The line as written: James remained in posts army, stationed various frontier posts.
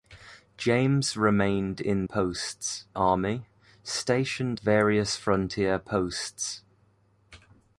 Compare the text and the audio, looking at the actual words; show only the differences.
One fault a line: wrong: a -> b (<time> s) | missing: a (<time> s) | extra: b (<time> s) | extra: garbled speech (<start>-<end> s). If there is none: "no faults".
no faults